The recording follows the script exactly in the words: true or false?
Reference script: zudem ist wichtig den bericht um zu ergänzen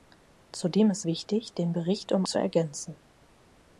true